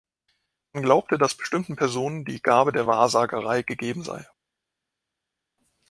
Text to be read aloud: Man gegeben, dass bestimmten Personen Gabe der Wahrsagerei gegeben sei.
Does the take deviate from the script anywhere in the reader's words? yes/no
yes